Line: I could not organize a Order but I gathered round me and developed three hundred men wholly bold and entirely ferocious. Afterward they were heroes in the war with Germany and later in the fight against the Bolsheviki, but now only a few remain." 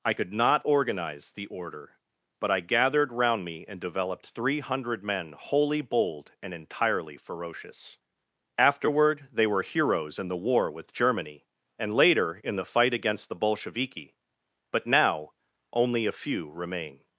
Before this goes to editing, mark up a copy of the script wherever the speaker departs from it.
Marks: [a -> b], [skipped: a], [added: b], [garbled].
I could not organize [a -> the] Order but I gathered round me and developed three hundred men wholly bold and entirely ferocious. Afterward they were heroes in the war with Germany and later in the fight against the Bolsheviki, but now only a few remain."